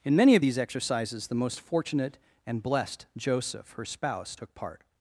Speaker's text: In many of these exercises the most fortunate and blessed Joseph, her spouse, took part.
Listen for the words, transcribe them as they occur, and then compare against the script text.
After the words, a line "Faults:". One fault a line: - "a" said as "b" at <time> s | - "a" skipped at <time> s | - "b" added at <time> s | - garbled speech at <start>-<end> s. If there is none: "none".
In many of these exercises the most fortunate and blessed Joseph, her spouse, took part.
Faults:
none